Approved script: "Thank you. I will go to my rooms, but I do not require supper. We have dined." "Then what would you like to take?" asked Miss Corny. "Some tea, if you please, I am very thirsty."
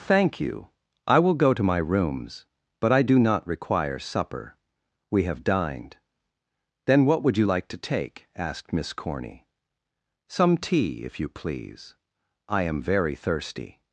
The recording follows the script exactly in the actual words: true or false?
true